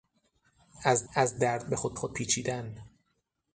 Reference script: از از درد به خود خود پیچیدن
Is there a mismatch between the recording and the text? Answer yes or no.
no